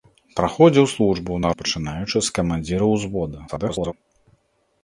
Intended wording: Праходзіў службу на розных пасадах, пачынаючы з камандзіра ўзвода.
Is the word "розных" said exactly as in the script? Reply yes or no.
no